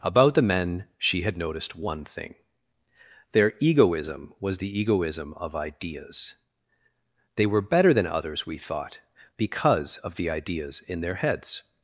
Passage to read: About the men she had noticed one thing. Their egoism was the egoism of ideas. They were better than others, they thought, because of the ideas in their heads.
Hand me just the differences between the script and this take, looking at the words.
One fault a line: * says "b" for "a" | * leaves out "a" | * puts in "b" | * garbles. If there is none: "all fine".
* says "we" for "they"